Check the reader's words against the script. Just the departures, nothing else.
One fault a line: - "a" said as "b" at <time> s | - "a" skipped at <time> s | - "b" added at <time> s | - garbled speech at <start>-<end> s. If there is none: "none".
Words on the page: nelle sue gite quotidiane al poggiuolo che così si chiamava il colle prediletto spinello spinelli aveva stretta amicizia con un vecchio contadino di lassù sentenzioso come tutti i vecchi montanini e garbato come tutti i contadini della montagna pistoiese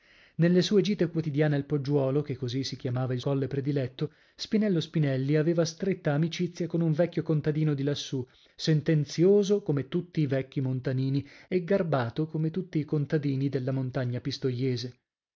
none